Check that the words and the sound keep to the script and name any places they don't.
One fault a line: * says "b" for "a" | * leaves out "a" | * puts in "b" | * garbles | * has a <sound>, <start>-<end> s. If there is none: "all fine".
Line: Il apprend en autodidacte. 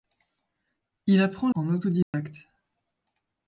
* has a dropout, 2.0-2.1 s